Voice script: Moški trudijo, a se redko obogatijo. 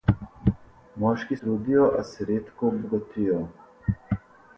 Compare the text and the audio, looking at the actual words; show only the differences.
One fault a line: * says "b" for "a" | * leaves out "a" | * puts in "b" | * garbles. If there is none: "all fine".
all fine